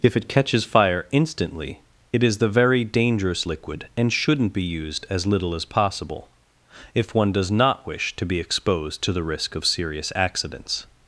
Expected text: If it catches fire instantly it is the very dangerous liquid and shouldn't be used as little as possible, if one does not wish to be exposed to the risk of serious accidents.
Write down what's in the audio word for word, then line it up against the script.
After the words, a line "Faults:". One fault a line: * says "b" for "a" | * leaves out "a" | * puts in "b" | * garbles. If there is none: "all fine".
If it catches fire instantly it is the very dangerous liquid and shouldn't be used as little as possible, if one does not wish to be exposed to the risk of serious accidents.
Faults:
all fine